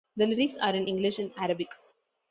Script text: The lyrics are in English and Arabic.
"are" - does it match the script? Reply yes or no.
yes